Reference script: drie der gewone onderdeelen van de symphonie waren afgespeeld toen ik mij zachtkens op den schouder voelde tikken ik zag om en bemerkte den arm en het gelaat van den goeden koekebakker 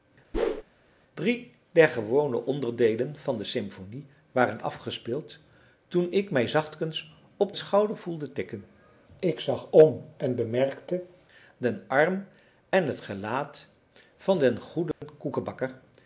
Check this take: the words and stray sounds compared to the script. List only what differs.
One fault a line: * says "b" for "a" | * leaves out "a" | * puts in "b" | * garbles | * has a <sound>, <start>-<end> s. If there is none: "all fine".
* has a whoosh, 0.3-0.6 s
* leaves out "den"
* has a dropout, 14.9-15.0 s